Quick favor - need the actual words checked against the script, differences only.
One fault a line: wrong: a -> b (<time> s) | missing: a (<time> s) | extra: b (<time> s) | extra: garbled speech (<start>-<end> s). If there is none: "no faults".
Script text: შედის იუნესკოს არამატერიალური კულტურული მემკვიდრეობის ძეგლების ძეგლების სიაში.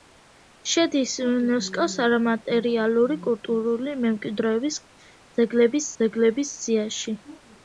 no faults